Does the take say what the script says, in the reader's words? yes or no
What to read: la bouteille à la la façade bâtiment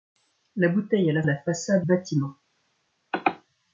yes